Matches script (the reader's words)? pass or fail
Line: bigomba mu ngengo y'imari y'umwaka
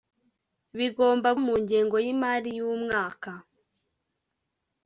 pass